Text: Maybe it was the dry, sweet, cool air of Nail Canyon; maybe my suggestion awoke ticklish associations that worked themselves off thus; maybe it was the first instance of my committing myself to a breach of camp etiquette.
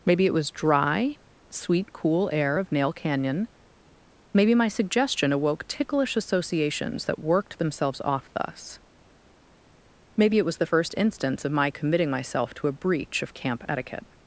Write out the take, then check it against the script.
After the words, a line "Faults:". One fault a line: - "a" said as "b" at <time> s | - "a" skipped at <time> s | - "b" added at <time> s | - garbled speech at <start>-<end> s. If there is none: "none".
Maybe it was dry, sweet, cool air of Nail Canyon; maybe my suggestion awoke ticklish associations that worked themselves off thus; maybe it was the first instance of my committing myself to a breach of camp etiquette.
Faults:
- "the" skipped at 0.5 s